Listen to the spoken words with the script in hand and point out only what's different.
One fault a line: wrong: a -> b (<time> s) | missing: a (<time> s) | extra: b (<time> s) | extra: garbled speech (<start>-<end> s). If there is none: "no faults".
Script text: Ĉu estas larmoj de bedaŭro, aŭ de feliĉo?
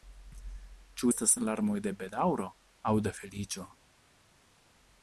no faults